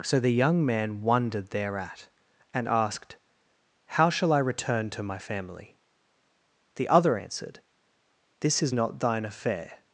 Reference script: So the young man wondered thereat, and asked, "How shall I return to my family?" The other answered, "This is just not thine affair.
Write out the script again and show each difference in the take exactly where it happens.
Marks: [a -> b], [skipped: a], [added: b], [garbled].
So the young man wondered thereat, and asked, "How shall I return to my family?" The other answered, "This is [skipped: just] not thine affair.